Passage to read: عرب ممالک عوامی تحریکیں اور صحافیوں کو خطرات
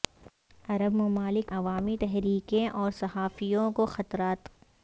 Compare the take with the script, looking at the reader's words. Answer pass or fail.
pass